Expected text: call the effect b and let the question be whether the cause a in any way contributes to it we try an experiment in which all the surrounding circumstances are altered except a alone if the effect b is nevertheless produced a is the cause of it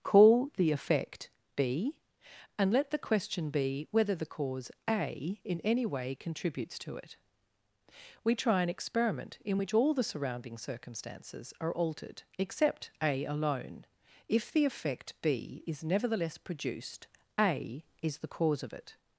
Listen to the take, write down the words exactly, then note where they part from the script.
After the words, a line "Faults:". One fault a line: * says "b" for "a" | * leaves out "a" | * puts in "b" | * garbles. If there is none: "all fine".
call the effect b and let the question be whether the cause a in any way contributes to it we try an experiment in which all the surrounding circumstances are altered except a alone if the effect b is nevertheless produced a is the cause of it
Faults:
all fine